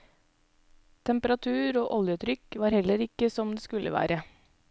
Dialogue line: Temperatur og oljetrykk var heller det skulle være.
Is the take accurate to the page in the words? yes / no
no